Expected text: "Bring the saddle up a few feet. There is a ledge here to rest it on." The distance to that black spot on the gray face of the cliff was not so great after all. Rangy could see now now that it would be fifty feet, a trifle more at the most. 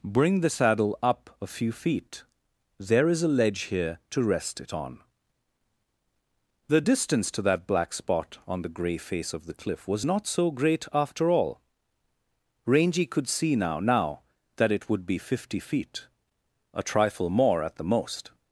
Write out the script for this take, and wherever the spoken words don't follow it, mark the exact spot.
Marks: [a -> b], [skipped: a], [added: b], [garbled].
"Bring the saddle up a few feet. There is a ledge here to rest it on." The distance to that black spot on the gray face of the cliff was not so great after all. Rangy could see now now that it would be fifty feet, a trifle more at the most.